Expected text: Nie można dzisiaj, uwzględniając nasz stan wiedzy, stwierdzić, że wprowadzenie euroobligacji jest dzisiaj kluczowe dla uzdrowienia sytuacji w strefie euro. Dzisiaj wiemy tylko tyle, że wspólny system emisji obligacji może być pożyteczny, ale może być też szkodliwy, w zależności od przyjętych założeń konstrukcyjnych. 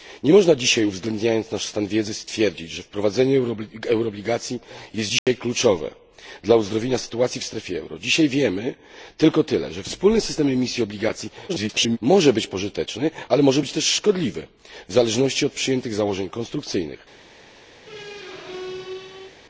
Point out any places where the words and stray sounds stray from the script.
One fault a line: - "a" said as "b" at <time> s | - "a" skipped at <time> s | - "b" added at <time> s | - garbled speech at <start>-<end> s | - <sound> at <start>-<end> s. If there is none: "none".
- dropout at 5.2-5.3 s
- garbled speech at 11.5-12.0 s
- squeak at 17.8-19.4 s